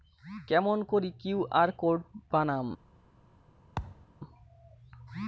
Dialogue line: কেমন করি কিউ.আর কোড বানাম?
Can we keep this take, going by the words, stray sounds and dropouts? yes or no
no